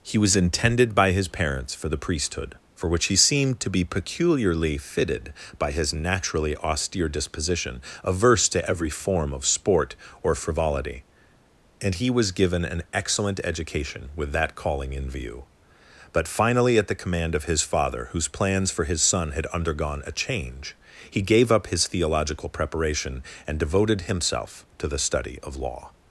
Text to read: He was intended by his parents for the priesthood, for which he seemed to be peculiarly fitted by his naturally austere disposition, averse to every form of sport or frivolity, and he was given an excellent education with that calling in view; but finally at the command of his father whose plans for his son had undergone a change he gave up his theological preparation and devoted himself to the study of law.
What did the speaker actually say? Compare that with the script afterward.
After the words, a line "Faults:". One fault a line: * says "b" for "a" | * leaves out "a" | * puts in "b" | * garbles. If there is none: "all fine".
He was intended by his parents for the priesthood, for which he seemed to be peculiarly fitted by his naturally austere disposition, averse to every form of sport or frivolity, and he was given an excellent education with that calling in view; but finally at the command of his father whose plans for his son had undergone a change he gave up his theological preparation and devoted himself to the study of law.
Faults:
all fine